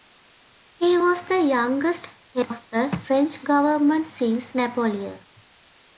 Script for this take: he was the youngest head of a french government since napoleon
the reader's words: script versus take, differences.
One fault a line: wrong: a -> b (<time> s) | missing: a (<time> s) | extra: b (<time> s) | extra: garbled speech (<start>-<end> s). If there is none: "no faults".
no faults